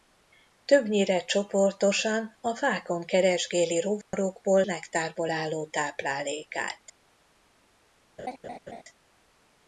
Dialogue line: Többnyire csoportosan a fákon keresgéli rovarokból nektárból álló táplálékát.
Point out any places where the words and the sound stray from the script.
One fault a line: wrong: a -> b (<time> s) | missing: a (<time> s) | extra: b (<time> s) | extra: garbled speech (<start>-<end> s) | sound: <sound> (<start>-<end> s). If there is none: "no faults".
sound: dropout (4.0-4.1 s)
sound: laugh (8.2-8.8 s)